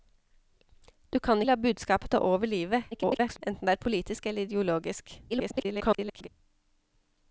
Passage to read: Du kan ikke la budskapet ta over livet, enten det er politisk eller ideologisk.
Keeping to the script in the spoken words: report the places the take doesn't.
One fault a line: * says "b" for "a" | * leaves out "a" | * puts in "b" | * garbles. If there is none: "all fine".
* leaves out "ikke"
* garbles
* garbles